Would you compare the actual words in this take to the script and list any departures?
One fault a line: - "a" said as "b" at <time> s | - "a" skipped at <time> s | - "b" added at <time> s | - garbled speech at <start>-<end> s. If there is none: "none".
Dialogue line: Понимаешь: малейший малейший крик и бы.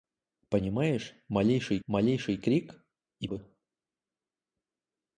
none